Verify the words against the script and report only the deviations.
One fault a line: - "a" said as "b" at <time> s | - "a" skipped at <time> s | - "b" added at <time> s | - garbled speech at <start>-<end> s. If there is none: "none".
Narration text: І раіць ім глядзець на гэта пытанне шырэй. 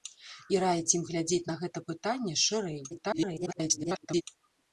- garbled speech at 2.9-4.2 s